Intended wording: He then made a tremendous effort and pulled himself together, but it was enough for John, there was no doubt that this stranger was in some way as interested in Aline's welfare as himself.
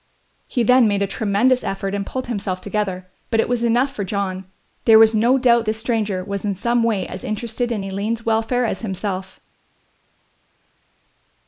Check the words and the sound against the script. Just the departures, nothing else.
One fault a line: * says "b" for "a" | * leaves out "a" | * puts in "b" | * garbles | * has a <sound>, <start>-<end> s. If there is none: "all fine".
* leaves out "that"